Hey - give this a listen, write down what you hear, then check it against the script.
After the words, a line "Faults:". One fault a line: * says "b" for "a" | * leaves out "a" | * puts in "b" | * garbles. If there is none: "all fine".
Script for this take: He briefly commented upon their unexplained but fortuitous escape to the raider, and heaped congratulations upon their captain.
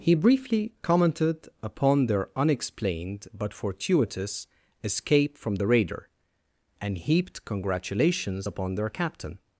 He briefly commented upon their unexplained but fortuitous escape from the raider, and heaped congratulations upon their captain.
Faults:
* says "from" for "to"